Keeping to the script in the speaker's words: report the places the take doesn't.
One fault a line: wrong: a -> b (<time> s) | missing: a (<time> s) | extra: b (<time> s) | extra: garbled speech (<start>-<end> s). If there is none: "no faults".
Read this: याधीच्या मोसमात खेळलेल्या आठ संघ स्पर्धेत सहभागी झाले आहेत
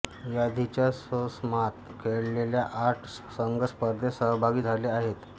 no faults